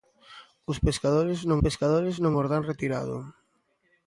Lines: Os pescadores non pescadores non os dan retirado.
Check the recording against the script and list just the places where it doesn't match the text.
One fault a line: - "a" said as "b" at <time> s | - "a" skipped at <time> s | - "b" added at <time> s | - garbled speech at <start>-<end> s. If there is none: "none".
none